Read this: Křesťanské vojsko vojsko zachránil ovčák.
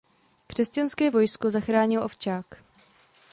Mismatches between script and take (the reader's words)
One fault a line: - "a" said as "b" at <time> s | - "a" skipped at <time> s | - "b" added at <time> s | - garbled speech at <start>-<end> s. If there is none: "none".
- "vojsko" skipped at 1.5 s